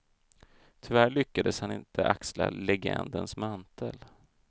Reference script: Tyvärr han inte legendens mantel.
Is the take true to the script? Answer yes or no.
no